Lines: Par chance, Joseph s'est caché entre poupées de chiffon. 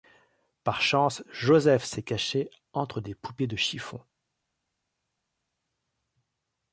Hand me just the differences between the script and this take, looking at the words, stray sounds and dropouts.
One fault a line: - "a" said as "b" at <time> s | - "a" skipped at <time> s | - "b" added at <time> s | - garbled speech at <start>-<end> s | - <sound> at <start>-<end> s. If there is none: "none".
- "des" added at 3.0 s